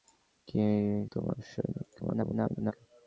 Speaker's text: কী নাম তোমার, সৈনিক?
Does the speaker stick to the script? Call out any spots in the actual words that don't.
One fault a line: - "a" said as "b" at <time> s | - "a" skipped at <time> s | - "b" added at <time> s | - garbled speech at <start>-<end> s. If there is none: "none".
- "নাম" skipped at 0.6 s
- garbled speech at 2.0-2.7 s